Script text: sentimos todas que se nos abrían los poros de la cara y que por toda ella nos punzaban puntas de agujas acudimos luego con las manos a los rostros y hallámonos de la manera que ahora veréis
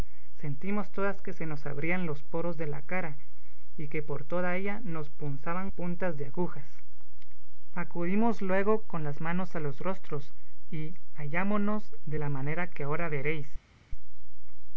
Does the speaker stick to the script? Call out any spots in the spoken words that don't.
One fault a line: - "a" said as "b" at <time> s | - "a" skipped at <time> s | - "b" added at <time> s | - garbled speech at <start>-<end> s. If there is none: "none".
none